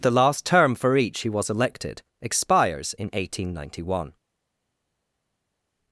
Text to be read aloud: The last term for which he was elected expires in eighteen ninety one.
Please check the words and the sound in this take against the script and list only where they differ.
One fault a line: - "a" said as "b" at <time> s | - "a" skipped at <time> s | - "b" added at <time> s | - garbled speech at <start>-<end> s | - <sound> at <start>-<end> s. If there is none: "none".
- "which" said as "each" at 1.0 s